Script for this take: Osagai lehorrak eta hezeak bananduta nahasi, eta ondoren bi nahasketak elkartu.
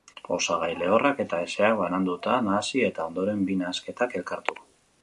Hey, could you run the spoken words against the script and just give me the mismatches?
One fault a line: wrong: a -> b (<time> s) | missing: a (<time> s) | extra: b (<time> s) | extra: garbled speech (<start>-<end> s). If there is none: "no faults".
no faults